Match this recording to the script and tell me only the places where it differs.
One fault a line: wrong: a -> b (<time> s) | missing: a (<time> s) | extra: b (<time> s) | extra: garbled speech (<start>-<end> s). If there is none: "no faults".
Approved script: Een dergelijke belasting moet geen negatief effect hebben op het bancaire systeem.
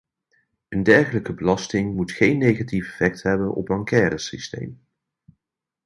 missing: het (3.7 s)